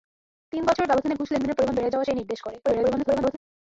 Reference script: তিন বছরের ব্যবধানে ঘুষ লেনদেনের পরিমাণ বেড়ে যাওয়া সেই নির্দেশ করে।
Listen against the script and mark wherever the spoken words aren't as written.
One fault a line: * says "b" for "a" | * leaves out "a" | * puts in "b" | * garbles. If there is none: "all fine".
* garbles